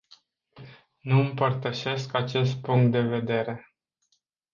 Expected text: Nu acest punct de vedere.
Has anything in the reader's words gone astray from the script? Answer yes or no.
yes